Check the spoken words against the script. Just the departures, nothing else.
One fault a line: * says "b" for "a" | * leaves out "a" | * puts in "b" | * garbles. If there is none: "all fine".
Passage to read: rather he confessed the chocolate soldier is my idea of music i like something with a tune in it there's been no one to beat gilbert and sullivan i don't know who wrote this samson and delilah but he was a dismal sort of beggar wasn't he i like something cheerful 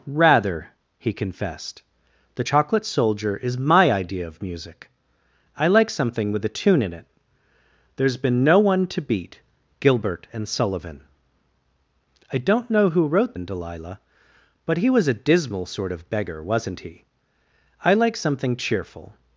* leaves out "this samson"